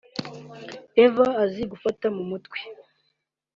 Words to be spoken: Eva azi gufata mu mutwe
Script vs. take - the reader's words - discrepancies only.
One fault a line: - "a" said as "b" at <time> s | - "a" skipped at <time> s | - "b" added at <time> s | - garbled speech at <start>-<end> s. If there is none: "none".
none